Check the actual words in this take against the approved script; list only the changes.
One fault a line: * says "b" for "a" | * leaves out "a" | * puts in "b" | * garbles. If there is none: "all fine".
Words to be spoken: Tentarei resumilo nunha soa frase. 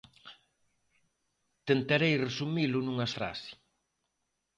* leaves out "soa"